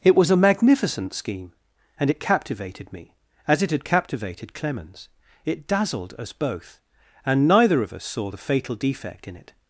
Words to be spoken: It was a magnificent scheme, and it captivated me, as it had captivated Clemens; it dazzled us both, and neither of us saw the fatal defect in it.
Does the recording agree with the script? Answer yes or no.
yes